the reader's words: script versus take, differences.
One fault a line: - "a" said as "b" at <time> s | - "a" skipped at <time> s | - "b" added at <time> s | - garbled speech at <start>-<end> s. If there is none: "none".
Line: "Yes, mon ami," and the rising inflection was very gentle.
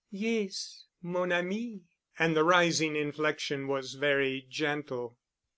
none